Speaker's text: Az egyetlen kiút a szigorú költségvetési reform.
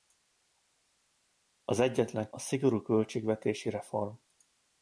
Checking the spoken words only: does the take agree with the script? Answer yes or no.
no